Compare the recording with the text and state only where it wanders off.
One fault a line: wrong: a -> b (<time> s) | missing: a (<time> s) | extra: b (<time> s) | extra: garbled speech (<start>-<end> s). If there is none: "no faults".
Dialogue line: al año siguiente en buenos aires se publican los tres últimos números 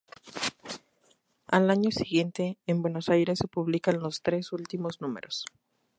no faults